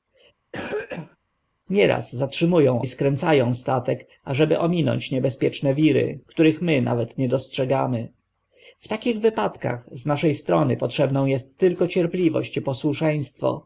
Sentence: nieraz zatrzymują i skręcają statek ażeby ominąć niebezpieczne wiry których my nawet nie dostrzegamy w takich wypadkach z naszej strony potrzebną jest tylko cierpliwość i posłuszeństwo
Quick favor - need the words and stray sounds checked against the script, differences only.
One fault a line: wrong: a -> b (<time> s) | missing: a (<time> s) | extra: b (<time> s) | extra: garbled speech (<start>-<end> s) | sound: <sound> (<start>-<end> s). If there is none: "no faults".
sound: cough (0.5-1.2 s)